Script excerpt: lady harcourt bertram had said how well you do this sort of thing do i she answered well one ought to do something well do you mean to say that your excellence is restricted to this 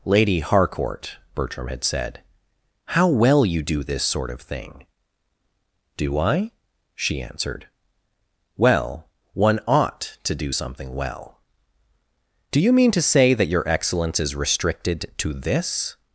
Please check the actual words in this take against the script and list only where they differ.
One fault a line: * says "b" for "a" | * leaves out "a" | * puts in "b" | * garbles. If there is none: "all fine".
all fine